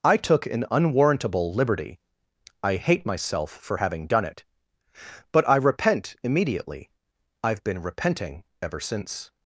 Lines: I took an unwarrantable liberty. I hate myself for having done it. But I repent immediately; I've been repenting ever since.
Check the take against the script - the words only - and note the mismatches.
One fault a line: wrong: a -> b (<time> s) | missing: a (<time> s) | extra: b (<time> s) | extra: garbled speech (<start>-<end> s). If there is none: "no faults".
no faults